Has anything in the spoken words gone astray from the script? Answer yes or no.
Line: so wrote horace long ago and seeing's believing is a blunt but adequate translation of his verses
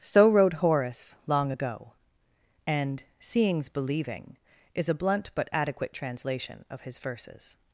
no